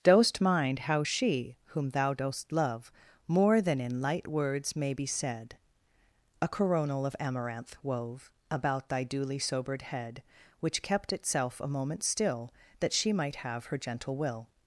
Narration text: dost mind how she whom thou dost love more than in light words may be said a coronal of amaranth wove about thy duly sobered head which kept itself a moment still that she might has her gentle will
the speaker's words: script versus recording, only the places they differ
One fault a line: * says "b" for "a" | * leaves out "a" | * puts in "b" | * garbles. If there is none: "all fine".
* says "have" for "has"